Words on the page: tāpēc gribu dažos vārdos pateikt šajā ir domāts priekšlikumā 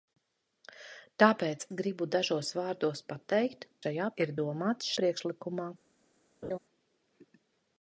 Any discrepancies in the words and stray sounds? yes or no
yes